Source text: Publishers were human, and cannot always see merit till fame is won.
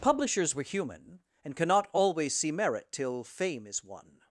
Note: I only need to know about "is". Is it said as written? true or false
true